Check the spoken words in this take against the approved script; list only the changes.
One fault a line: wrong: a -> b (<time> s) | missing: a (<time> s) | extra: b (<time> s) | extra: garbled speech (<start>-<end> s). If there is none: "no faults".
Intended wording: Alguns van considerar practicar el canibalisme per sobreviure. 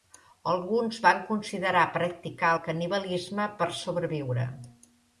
no faults